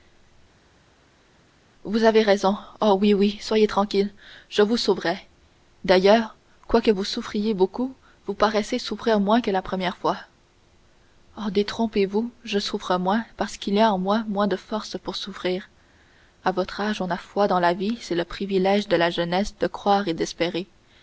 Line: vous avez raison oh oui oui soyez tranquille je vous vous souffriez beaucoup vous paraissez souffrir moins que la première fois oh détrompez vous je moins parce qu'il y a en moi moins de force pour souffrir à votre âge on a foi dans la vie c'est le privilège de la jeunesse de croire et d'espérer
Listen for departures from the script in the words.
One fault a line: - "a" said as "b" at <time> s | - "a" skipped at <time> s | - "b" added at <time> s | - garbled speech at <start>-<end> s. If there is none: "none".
- "sauverai d'ailleurs quoique" added at 4.8 s
- "souffre" added at 12.6 s